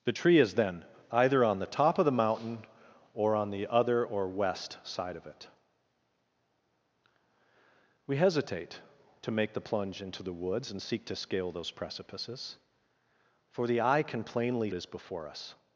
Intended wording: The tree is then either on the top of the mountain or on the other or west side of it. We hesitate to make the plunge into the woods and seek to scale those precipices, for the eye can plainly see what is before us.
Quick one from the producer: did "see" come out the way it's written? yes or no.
no